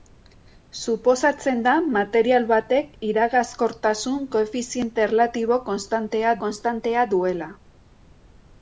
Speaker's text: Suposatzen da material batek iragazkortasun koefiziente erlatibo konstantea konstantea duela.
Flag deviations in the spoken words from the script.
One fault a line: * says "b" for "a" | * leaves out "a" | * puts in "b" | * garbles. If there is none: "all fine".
all fine